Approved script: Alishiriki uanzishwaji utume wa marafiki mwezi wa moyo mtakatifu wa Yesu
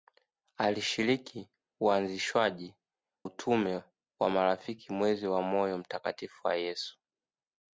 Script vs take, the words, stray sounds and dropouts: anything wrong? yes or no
no